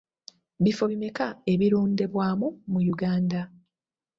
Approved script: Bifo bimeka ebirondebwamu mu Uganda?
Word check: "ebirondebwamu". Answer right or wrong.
right